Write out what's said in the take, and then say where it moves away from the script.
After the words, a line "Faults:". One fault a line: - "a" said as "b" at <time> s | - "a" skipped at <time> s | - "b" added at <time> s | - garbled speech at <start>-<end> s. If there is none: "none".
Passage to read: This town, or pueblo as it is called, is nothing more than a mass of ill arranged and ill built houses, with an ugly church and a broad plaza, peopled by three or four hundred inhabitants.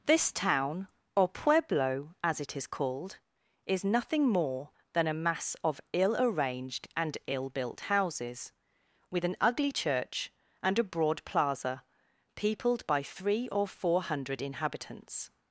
This town, or pueblo as it is called, is nothing more than a mass of ill arranged and ill built houses, with an ugly church and a broad plaza, peopled by three or four hundred inhabitants.
Faults:
none